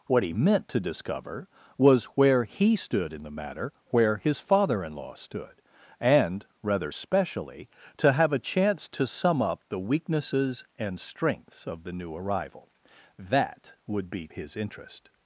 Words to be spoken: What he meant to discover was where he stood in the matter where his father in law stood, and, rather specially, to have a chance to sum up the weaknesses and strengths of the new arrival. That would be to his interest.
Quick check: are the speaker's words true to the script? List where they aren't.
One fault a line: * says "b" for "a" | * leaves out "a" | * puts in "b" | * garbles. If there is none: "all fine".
* leaves out "to"